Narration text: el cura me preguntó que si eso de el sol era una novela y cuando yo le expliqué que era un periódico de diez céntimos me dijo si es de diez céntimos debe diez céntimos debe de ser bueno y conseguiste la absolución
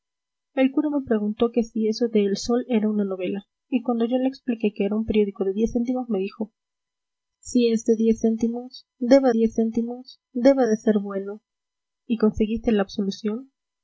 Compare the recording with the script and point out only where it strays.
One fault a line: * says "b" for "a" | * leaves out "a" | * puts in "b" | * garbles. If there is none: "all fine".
all fine